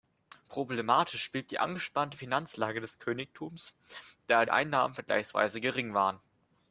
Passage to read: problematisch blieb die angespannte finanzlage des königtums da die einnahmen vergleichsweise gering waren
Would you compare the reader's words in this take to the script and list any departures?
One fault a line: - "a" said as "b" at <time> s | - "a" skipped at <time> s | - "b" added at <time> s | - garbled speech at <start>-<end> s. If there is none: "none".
- "die" skipped at 4.5 s